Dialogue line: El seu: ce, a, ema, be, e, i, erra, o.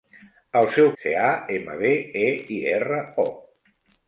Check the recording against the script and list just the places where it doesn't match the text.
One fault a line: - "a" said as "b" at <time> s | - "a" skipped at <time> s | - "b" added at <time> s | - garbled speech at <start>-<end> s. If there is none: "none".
none